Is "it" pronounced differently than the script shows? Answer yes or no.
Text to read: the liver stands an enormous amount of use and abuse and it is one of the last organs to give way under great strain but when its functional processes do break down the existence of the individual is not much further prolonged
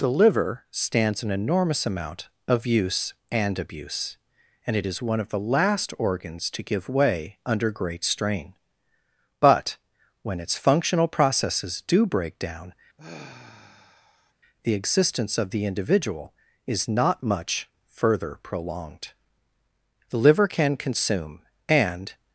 no